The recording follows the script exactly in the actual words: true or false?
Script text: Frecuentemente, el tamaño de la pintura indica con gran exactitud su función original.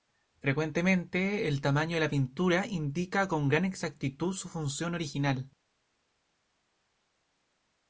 true